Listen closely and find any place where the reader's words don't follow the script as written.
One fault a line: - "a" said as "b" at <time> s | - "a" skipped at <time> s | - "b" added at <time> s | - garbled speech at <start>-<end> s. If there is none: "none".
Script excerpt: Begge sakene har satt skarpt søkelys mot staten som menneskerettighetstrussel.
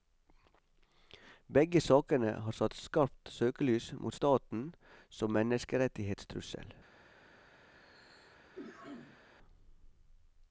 none